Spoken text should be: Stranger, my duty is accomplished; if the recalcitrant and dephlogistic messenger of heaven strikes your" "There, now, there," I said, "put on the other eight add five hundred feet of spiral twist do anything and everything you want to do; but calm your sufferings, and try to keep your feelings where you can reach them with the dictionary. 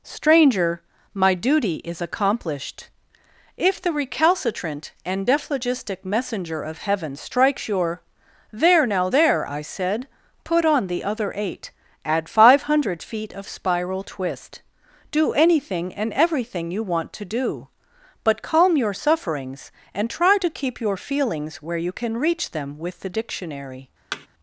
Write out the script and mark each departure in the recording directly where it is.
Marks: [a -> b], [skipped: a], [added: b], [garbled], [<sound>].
Stranger, my duty is accomplished; if the recalcitrant and dephlogistic messenger of heaven strikes your" "There, now, there," I said, "put on the other eight add five hundred feet of spiral twist do anything and everything you want to do; but calm your sufferings, and try to keep your feelings where you can reach them with the dictionary. [thud]